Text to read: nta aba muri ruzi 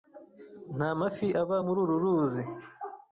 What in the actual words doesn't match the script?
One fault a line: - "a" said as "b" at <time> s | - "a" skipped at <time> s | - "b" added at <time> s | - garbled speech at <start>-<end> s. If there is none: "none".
- "mafi" added at 1.0 s
- "uru" added at 1.8 s